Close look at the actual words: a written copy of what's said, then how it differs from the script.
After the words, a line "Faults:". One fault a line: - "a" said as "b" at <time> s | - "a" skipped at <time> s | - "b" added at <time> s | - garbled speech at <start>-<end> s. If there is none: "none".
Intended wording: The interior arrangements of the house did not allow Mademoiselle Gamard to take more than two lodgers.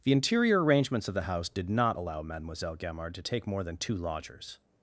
The interior arrangements of the house did not allow Mademoiselle Gamard to take more than two lodgers.
Faults:
none